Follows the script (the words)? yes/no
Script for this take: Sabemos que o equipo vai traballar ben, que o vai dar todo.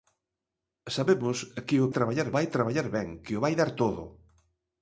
no